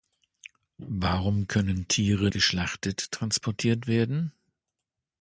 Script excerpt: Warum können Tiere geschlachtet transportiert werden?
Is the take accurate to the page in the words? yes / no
yes